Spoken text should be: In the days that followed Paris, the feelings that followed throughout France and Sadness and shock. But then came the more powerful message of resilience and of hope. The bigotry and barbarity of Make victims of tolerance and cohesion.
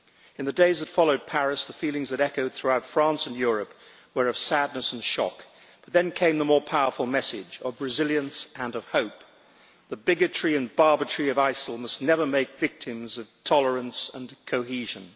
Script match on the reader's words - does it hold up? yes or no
no